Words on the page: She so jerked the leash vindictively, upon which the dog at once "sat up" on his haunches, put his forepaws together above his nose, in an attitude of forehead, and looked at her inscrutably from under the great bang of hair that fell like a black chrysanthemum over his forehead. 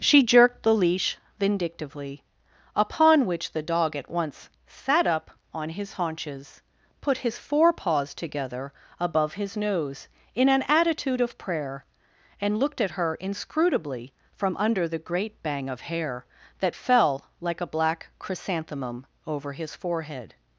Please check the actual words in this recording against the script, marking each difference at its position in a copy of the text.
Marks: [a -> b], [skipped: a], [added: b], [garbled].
She [skipped: so] jerked the leash vindictively, upon which the dog at once "sat up" on his haunches, put his forepaws together above his nose, in an attitude of [forehead, -> prayer] and looked at her inscrutably from under the great bang of hair that fell like a black chrysanthemum over his forehead.